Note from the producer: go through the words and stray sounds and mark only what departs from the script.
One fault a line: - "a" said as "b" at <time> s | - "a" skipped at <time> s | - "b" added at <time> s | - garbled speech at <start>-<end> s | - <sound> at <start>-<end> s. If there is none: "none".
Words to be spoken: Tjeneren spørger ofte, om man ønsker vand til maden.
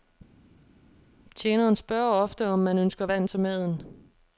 none